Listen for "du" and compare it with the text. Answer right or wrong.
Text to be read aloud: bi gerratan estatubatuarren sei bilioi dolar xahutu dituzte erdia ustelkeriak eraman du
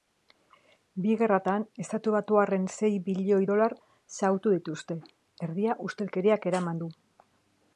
right